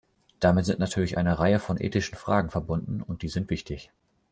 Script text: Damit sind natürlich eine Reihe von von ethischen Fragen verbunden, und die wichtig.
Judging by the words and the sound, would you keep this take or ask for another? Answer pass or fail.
fail